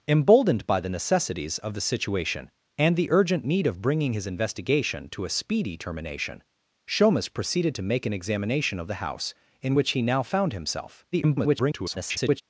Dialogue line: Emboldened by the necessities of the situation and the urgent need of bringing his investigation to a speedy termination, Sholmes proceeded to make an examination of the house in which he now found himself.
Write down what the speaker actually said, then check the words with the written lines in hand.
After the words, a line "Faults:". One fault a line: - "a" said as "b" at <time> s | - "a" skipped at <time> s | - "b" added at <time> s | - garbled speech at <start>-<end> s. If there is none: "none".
Emboldened by the necessities of the situation and the urgent need of bringing his investigation to a speedy termination, Sholmes proceeded to make an examination of the house in which he now found himself. [garbled]
Faults:
- garbled speech at 11.1-12.4 s